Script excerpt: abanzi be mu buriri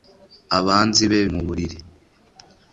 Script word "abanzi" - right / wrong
right